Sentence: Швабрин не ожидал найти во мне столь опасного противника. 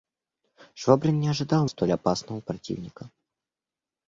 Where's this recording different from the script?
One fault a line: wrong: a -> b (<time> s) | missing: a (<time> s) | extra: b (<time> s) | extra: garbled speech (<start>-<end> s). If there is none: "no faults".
missing: найти во мне (1.6 s)